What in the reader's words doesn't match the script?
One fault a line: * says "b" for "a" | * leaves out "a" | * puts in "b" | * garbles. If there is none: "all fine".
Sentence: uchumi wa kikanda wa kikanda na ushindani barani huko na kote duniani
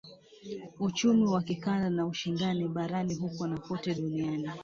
* leaves out "wa kikanda"